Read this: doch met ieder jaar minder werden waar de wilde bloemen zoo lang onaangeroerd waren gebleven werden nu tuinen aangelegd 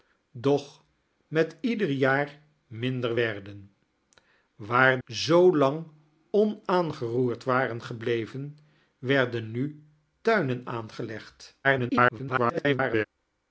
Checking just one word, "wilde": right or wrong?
wrong